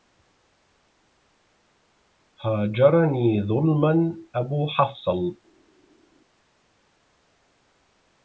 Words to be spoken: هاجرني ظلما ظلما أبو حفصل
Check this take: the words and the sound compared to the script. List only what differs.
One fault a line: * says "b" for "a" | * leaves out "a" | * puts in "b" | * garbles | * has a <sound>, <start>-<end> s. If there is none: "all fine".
* leaves out "ظلما"